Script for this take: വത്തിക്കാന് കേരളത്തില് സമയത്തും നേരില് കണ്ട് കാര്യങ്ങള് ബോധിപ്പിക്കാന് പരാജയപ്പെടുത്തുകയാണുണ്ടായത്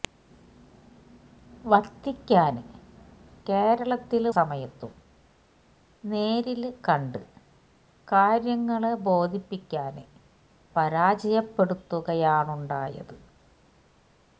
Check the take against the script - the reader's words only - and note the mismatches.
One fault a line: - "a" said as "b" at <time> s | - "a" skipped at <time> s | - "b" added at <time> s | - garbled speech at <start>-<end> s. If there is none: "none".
none